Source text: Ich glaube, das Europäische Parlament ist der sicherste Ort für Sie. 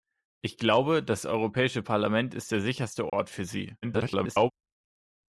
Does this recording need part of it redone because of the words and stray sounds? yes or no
yes